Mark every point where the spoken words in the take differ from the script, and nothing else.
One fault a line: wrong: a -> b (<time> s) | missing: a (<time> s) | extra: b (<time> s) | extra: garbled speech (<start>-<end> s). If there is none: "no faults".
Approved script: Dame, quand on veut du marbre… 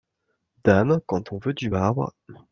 no faults